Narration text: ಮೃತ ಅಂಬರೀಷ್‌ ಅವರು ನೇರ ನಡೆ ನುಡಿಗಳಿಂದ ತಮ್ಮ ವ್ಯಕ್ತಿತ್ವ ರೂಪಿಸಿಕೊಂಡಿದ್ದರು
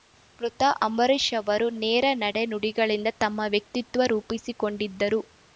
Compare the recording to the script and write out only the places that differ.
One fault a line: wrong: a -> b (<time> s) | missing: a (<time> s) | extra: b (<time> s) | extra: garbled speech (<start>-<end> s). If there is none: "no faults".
no faults